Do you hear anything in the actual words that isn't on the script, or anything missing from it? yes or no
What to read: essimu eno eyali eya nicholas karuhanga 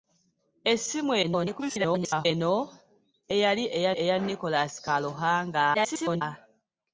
yes